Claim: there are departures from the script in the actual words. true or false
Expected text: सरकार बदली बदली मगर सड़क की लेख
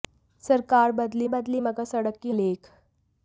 false